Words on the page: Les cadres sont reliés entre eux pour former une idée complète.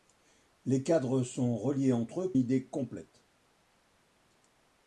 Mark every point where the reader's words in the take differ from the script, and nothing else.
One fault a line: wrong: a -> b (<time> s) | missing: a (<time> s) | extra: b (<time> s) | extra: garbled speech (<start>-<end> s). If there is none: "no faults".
missing: pour former une (2.3 s)